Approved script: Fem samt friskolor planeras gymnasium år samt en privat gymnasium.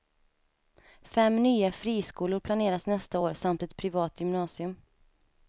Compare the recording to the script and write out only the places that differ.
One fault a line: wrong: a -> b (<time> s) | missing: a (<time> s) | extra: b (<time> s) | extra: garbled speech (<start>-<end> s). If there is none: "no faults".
wrong: samt -> nya (1.4 s)
wrong: gymnasium -> nästa (2.9 s)
wrong: en -> ett (3.6 s)